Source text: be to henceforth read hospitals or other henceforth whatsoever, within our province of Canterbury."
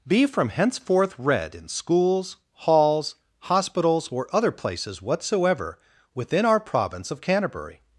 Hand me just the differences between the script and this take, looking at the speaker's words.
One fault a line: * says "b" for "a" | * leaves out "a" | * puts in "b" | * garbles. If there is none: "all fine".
* says "from" for "to"
* puts in "in schools halls"
* says "places" for "henceforth"